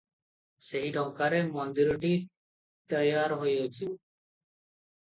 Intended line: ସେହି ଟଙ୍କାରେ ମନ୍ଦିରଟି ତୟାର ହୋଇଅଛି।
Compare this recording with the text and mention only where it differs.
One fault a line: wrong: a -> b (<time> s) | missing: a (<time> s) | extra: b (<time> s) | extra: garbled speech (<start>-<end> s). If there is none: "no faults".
no faults